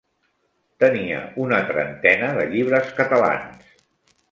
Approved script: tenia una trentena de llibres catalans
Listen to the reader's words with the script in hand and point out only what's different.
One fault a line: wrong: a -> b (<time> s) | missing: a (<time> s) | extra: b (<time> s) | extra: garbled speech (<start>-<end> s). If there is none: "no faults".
no faults